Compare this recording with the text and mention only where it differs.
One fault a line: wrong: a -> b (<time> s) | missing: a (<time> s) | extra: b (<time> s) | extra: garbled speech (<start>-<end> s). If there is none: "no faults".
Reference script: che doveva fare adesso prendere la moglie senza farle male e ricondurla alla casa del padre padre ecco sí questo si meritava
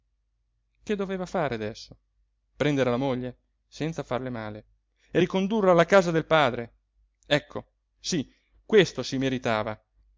missing: padre (6.7 s)